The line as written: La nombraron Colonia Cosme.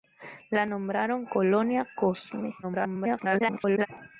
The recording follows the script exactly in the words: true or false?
false